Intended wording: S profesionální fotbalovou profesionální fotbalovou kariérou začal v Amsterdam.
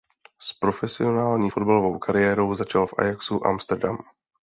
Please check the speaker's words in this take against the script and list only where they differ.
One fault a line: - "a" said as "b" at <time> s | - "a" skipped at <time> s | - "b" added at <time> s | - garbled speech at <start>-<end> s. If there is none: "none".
- "profesionální fotbalovou" skipped at 2.0 s
- "Ajaxu" added at 3.0 s